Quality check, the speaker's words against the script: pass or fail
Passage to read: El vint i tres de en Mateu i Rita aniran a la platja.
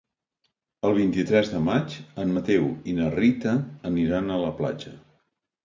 fail